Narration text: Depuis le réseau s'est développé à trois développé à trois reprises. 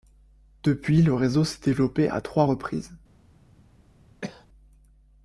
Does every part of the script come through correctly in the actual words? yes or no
no